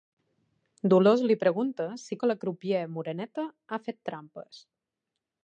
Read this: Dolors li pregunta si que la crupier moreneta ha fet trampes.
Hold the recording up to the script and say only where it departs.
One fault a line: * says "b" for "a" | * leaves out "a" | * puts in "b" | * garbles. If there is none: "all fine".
all fine